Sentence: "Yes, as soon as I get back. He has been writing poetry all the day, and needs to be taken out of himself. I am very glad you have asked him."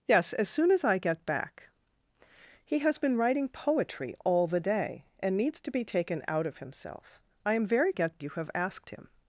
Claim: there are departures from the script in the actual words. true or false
true